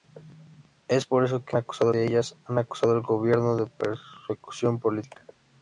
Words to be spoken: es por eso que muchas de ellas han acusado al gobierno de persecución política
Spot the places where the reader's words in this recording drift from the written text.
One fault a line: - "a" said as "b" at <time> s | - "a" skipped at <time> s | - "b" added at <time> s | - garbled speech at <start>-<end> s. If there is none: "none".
- "muchas" said as "acusado" at 1.5 s